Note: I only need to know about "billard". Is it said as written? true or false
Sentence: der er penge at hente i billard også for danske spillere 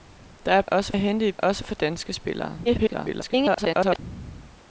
false